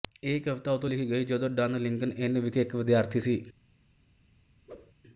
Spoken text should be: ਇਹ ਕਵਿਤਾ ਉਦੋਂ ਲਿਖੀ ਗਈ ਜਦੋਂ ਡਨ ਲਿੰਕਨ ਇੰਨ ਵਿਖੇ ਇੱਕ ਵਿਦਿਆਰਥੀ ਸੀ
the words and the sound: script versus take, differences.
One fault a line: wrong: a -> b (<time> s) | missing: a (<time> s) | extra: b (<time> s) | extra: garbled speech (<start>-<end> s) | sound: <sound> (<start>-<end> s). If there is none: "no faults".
sound: whoosh (4.7-4.9 s)